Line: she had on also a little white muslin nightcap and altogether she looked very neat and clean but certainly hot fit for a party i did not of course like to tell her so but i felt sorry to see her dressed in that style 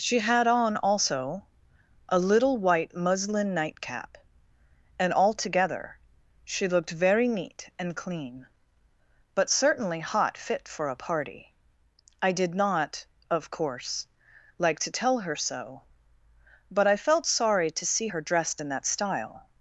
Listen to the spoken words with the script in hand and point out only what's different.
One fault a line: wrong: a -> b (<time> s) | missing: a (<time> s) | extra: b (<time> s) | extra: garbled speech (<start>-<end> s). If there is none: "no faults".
no faults